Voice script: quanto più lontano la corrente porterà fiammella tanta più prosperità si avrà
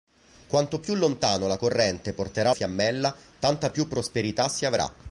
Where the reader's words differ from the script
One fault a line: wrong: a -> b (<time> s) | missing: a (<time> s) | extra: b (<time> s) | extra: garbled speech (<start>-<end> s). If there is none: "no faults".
no faults